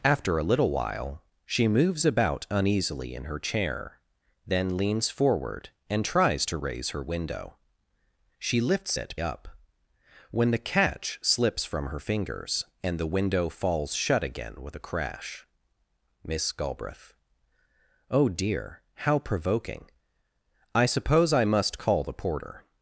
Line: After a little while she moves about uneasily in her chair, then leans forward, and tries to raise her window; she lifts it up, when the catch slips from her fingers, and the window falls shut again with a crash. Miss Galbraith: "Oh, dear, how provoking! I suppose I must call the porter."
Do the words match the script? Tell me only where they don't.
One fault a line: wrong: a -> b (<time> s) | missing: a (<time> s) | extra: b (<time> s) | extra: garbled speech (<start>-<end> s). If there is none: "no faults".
no faults